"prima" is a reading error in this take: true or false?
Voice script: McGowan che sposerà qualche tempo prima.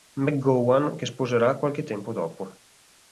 true